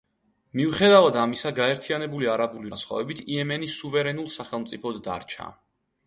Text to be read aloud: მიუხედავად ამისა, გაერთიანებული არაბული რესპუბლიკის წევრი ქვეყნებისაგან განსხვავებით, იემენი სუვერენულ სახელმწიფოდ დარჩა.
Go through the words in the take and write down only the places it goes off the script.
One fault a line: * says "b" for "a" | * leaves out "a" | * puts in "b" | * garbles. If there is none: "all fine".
* leaves out "რესპუბლიკის წევრი ქვეყნებისაგან"